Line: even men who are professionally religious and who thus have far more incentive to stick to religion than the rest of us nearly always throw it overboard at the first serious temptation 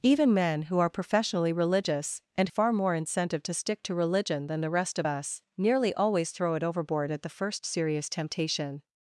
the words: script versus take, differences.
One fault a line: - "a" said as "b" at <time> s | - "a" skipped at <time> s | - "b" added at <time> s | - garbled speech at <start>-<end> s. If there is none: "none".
- "who thus have" skipped at 2.5 s